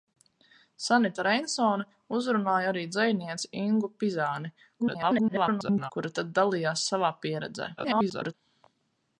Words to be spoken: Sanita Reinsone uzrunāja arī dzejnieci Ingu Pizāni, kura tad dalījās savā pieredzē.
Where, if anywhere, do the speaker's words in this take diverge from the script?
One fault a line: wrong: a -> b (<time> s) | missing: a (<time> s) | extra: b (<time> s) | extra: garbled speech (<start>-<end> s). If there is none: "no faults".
extra: garbled speech (4.8-5.9 s)
extra: garbled speech (7.8-8.3 s)